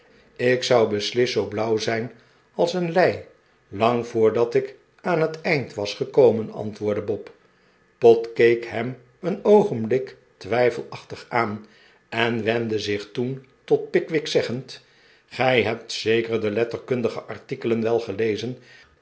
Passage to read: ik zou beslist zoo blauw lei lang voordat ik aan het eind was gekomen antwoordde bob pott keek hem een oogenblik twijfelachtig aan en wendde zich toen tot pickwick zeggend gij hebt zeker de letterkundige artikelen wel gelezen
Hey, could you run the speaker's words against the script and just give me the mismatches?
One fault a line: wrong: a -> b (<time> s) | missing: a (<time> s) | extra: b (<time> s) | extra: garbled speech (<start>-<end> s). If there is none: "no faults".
extra: zijn als een (1.8 s)